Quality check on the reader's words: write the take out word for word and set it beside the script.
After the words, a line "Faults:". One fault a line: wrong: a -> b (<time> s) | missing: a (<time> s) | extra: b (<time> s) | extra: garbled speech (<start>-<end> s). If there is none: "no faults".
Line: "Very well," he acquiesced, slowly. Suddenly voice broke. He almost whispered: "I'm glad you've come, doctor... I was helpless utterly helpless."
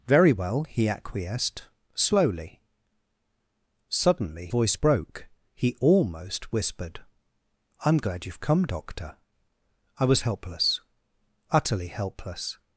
"Very well," he acquiesced, slowly. Suddenly voice broke. He almost whispered: "I'm glad you've come, doctor... I was helpless utterly helpless."
Faults:
no faults